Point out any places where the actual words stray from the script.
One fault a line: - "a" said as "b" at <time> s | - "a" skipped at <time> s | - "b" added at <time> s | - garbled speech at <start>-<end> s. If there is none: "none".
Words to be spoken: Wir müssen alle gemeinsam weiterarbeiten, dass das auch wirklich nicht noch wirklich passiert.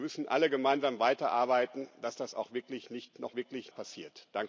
none